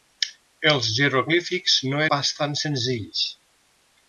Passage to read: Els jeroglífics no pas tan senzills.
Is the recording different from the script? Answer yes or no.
no